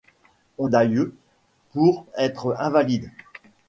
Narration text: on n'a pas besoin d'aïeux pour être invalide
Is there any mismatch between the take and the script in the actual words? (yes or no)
yes